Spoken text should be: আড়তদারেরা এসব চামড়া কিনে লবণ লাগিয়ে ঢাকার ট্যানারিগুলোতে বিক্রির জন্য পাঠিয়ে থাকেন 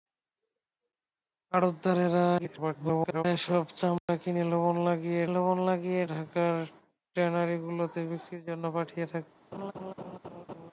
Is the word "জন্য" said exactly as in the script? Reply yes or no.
yes